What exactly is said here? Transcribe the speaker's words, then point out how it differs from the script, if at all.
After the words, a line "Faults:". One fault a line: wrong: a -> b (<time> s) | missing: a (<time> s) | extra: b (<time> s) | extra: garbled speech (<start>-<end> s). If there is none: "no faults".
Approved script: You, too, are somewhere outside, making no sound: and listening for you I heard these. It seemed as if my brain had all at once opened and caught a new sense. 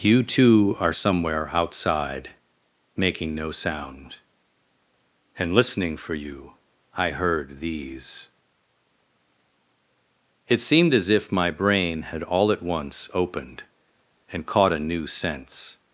You, too, are somewhere outside, making no sound: and listening for you I heard these. It seemed as if my brain had all at once opened and caught a new sense.
Faults:
no faults